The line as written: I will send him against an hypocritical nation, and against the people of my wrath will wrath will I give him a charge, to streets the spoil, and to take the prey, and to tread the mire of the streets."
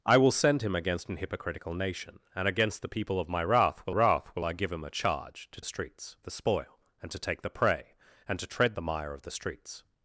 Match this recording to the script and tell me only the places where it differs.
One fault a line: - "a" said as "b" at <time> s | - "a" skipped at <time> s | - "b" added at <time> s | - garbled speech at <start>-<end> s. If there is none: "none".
none